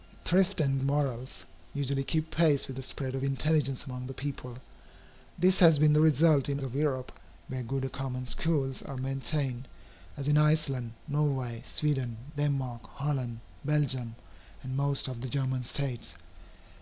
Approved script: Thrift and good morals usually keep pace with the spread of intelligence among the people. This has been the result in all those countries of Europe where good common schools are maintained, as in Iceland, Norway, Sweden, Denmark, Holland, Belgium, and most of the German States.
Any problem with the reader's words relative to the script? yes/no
yes